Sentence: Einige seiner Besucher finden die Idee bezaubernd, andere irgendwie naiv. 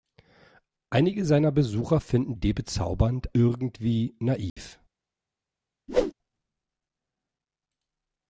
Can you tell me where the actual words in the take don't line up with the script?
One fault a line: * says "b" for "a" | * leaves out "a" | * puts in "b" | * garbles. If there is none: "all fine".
* leaves out "die"
* leaves out "andere"